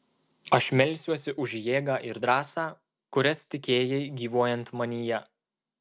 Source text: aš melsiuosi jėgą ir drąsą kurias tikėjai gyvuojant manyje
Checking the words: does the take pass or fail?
fail